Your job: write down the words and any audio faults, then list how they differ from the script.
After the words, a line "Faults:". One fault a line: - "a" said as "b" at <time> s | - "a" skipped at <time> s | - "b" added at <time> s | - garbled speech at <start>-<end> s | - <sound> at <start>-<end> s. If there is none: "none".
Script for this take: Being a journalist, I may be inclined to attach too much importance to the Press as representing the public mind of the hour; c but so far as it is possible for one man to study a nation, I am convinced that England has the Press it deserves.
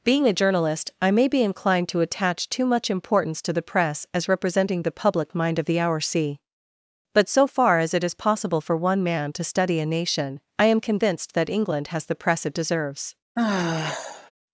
Being a journalist, I may be inclined to attach too much importance to the Press as representing the public mind of the hour; c but so far as it is possible for one man to study a nation, I am convinced that England has the Press it deserves.
Faults:
- sigh at 13.4-14.3 s